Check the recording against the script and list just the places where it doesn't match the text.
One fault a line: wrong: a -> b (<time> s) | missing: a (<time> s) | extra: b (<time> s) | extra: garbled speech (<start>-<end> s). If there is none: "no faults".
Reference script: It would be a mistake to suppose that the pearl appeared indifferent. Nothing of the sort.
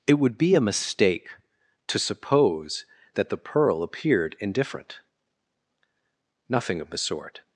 no faults